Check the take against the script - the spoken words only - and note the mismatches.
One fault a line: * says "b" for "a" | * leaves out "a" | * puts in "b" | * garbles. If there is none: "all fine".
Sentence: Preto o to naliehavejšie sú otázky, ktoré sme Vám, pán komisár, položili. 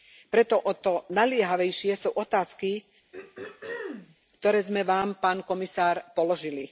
all fine